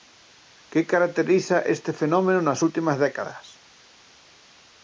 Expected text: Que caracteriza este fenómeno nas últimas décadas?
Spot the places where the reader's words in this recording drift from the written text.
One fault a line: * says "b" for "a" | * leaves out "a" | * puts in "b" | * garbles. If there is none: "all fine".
all fine